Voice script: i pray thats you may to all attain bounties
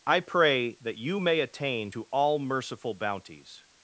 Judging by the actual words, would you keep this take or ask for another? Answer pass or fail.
fail